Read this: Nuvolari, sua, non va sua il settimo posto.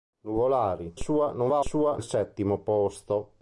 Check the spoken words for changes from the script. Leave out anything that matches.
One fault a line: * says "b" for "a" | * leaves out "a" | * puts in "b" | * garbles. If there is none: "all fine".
all fine